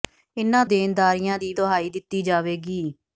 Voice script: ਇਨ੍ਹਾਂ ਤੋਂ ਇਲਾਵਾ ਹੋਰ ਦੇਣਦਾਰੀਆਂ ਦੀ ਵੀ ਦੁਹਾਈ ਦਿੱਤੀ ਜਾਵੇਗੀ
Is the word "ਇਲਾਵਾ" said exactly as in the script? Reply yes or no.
no